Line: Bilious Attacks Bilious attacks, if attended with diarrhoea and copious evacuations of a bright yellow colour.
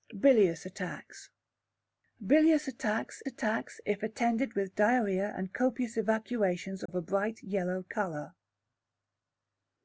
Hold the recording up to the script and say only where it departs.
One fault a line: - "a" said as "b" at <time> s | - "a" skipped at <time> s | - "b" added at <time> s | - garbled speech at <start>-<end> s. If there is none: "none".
- "attacks" added at 3.3 s